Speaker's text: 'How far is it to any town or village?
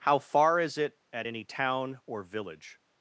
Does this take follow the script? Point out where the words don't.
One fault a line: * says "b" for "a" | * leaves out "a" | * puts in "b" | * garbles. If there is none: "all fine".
* says "at" for "to"